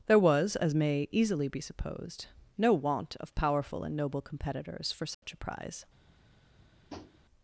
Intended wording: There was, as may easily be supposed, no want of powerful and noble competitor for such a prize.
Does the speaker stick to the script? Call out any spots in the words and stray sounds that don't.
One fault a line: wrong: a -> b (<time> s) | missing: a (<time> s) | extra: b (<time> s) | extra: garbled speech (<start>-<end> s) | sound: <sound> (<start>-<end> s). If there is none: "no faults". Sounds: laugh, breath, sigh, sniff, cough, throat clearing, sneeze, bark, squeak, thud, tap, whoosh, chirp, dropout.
wrong: competitor -> competitors (4.2 s)
sound: dropout (5.1-5.2 s)
sound: tap (6.9-7.2 s)